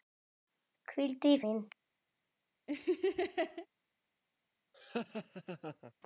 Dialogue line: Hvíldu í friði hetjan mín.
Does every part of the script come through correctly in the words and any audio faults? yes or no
no